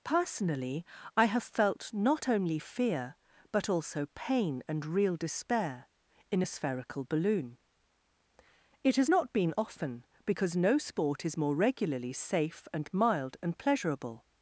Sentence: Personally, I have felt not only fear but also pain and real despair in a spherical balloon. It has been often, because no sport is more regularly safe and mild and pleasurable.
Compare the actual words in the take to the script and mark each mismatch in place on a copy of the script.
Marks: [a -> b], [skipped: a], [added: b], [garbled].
Personally, I have felt not only fear but also pain and real despair in a spherical balloon. It has [added: not] been often, because no sport is more regularly safe and mild and pleasurable.